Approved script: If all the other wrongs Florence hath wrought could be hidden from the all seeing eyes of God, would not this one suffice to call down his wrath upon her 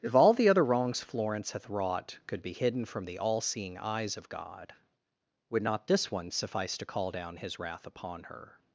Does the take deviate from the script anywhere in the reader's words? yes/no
no